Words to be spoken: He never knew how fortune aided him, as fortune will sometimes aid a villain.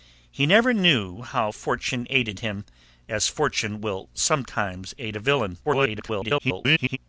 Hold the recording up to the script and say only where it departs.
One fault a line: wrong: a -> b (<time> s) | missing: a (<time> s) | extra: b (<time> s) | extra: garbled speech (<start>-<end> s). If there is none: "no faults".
extra: garbled speech (5.6-7.0 s)